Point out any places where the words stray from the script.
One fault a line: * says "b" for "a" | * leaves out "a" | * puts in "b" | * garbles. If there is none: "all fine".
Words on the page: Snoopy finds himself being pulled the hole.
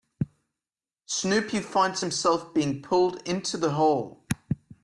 * puts in "into"